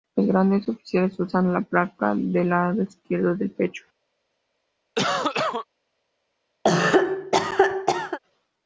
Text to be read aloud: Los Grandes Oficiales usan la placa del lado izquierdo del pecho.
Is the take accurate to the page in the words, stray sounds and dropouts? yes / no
no